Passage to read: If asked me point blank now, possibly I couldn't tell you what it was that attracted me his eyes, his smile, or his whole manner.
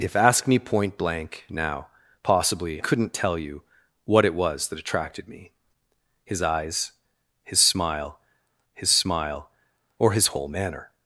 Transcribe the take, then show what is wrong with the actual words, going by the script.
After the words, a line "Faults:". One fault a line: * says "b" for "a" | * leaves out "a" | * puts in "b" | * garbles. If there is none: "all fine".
If asked me point blank now, possibly couldn't tell you what it was that attracted me his eyes, his smile his smile, or his whole manner.
Faults:
* leaves out "I"
* puts in "his smile"